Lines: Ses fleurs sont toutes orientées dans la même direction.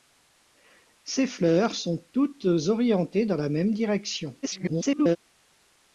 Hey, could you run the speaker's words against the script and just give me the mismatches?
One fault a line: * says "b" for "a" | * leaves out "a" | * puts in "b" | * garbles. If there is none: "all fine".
* garbles